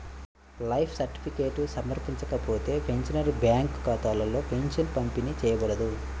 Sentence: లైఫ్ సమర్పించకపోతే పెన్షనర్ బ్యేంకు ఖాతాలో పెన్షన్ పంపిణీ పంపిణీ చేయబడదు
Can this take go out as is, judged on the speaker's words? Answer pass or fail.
fail